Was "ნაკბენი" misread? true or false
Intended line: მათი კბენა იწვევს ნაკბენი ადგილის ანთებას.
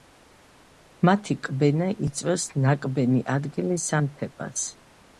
false